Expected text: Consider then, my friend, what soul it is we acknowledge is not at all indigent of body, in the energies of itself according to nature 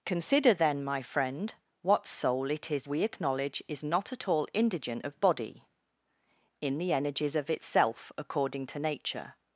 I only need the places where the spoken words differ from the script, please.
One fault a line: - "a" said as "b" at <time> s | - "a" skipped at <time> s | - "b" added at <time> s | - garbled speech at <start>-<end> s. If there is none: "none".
none